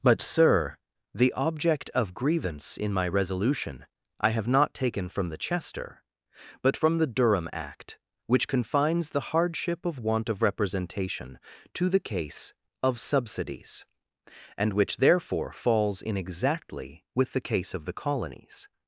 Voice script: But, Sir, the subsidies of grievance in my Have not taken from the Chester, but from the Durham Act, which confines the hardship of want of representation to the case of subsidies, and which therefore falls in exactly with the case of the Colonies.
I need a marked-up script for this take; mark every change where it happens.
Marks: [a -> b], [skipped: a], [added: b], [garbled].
But, Sir, the [subsidies -> object] of grievance in my [added: Resolution I] Have not taken from the Chester, but from the Durham Act, which confines the hardship of want of representation to the case of subsidies, and which therefore falls in exactly with the case of the Colonies.